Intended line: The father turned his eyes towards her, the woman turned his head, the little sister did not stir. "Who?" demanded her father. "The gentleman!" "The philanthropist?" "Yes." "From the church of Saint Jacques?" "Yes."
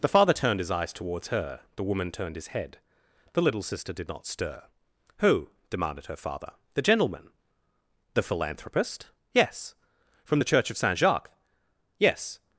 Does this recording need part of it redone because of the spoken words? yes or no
no